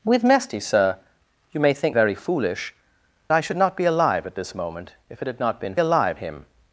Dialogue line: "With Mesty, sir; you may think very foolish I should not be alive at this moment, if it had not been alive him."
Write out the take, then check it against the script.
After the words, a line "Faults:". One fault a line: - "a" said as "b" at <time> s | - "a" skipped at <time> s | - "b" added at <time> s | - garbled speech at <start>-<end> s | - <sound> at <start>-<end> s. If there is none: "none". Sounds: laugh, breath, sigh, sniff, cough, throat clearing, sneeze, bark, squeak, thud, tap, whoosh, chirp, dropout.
"With Mesty, sir; you may think very foolish I should not be alive at this moment, if it had not been alive him."
Faults:
none